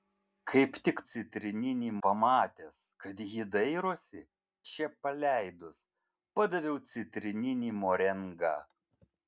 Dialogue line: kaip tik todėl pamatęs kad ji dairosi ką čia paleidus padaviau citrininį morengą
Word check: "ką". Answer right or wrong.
wrong